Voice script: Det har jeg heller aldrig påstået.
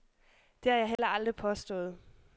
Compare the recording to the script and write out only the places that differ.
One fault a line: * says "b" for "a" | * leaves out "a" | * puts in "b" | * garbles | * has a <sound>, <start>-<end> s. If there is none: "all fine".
* has a dropout, 1.0-1.0 s